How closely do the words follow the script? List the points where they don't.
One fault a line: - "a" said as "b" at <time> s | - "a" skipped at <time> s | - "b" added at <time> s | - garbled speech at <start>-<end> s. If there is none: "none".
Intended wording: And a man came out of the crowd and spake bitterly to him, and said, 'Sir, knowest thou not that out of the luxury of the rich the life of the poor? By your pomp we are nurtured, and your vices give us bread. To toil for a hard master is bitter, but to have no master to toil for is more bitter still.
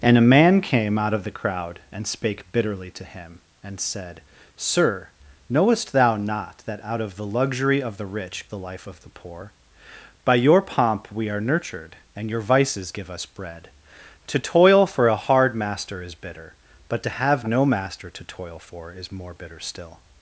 none